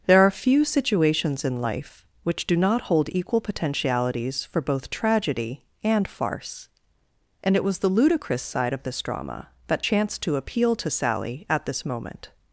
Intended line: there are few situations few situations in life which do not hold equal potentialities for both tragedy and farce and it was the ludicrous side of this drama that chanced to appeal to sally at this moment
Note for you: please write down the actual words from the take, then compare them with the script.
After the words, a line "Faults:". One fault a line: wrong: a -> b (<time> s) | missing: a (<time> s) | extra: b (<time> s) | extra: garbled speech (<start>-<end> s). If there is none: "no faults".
there are few situations in life which do not hold equal potentialities for both tragedy and farce and it was the ludicrous side of this drama that chanced to appeal to sally at this moment
Faults:
missing: few situations (1.4 s)